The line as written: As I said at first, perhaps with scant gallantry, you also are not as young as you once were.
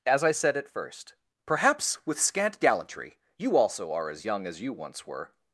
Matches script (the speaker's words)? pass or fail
fail